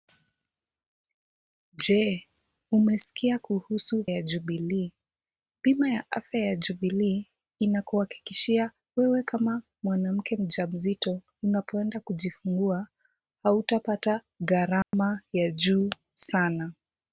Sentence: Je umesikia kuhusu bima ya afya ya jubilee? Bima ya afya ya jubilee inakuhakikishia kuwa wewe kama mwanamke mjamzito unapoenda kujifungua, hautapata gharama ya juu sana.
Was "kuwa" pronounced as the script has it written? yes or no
no